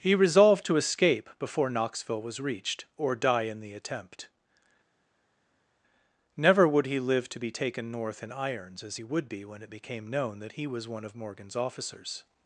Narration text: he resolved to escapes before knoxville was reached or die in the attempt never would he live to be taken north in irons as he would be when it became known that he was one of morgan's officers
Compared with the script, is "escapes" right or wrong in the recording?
wrong